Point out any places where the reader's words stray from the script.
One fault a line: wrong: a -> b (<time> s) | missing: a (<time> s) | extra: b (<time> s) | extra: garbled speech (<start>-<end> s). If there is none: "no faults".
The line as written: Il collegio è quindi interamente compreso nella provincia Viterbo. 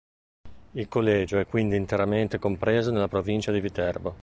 extra: di (3.5 s)